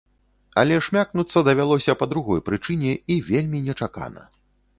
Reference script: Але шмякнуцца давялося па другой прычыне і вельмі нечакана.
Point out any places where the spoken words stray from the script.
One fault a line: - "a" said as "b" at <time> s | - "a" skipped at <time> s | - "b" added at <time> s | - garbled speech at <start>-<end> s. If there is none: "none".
none